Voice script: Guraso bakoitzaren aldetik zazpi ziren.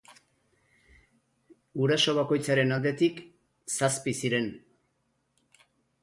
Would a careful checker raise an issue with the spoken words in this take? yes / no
no